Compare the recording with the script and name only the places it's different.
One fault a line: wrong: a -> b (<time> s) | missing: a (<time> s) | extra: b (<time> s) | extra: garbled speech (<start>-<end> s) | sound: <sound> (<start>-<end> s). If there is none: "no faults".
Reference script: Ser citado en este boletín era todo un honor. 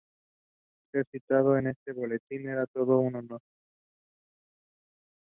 no faults